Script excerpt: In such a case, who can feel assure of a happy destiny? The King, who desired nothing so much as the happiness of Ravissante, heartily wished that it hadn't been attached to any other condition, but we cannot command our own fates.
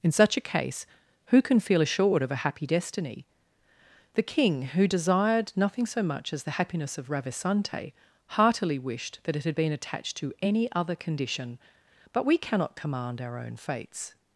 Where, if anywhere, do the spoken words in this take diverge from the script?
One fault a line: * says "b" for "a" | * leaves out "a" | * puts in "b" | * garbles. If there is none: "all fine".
* says "assured" for "assure"
* says "had" for "hadn't"